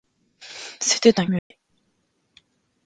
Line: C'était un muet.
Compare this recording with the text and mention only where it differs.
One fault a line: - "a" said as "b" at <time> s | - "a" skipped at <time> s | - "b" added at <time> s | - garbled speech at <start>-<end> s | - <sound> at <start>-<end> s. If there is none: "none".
- dropout at 1.4-1.5 s